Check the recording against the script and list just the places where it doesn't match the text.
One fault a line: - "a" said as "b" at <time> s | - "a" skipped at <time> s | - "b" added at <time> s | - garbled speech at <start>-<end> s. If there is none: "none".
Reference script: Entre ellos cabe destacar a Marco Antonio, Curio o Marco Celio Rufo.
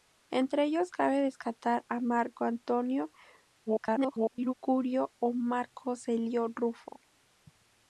- garbled speech at 3.7-4.5 s